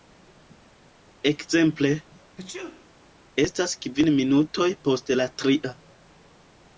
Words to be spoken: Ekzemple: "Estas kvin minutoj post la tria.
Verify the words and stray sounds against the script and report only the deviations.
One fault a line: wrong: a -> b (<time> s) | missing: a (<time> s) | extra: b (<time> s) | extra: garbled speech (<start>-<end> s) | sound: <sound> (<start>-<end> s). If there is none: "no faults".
sound: sneeze (2.4-2.9 s)